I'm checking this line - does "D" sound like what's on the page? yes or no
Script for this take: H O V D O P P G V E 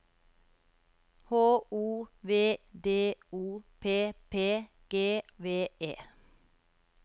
yes